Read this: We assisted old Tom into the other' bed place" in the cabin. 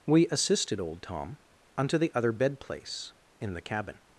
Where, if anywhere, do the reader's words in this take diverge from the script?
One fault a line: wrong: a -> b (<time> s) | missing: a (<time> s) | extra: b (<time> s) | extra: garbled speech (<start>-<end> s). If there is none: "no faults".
wrong: into -> unto (1.8 s)